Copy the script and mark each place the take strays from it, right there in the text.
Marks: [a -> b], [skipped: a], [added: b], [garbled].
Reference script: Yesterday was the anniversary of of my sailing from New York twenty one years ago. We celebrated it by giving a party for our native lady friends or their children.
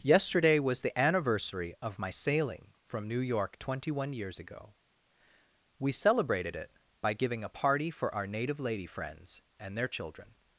Yesterday was the anniversary of [skipped: of] my sailing from New York twenty one years ago. We celebrated it by giving a party for our native lady friends [or -> and] their children.